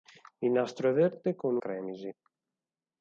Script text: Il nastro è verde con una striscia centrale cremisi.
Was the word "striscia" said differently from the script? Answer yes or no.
yes